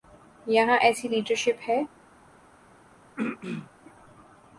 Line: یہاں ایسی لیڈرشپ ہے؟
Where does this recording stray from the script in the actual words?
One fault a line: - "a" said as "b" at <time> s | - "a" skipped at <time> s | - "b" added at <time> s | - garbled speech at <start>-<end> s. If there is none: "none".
none